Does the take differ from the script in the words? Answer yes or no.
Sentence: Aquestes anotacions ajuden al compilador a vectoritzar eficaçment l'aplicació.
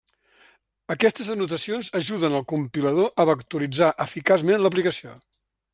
no